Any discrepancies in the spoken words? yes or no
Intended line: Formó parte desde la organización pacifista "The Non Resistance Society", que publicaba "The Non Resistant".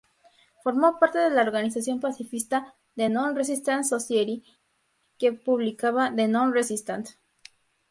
yes